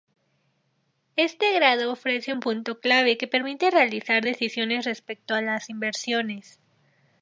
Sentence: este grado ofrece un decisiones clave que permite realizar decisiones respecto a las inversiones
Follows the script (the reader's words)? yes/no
no